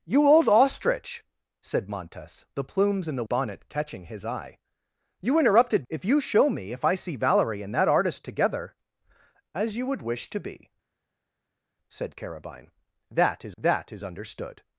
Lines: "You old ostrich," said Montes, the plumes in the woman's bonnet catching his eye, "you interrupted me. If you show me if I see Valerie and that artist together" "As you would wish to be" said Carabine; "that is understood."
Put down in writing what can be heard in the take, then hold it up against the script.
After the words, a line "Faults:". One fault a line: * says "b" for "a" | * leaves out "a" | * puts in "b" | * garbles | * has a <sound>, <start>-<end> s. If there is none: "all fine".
"You old ostrich," said Montes, the plumes in the bonnet catching his eye, "you interrupted. If you show me if I see Valerie and that artist together" "As you would wish to be" said Carabine; "that is that is understood."
Faults:
* leaves out "woman's"
* leaves out "me"
* puts in "that is"